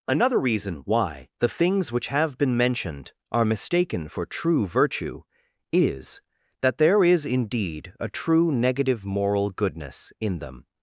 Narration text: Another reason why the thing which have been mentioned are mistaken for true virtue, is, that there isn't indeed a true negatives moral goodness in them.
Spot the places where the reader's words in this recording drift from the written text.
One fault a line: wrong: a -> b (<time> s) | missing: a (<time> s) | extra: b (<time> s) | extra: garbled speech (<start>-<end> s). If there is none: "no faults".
wrong: thing -> things (1.5 s)
wrong: isn't -> is (7.0 s)
wrong: negatives -> negative (8.5 s)